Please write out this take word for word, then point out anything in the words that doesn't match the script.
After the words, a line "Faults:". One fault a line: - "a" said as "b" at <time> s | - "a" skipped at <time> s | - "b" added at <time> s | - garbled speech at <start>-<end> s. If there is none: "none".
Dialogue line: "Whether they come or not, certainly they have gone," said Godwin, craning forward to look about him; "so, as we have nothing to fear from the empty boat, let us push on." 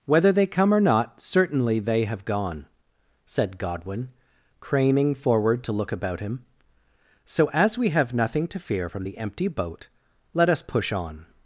"Whether they come or not, certainly they have gone," said Godwin, craning forward to look about him; "so, as we have nothing to fear from the empty boat, let us push on."
Faults:
none